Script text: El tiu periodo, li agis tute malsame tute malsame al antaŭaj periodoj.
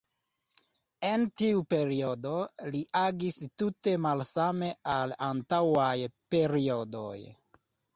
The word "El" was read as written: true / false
false